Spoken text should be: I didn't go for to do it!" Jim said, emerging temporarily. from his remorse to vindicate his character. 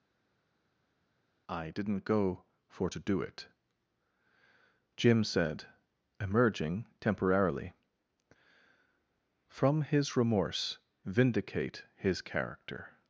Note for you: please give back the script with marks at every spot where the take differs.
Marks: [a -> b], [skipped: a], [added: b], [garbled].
I didn't go for to do it!" Jim said, emerging temporarily. from his remorse [skipped: to] vindicate his character.